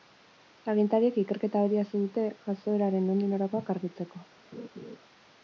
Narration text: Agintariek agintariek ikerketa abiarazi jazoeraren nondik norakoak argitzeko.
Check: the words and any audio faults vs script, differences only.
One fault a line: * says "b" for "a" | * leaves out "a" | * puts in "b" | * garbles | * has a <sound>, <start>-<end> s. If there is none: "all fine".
* leaves out "agintariek"
* puts in "dute"
* has a laugh, 4.5-5.0 s